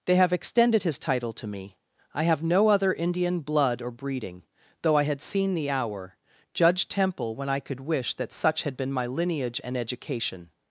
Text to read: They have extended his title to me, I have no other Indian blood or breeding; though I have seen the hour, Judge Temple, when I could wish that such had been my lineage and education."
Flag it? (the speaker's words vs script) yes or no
yes